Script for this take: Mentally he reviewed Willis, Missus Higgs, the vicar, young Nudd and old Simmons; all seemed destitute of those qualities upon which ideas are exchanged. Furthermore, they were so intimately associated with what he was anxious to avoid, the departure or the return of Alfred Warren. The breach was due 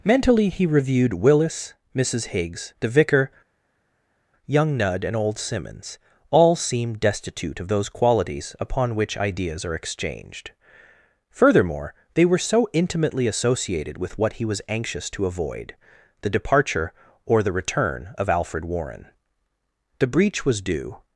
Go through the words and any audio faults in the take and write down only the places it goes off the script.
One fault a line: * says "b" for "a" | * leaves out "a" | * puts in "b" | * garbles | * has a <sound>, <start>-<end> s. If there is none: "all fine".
all fine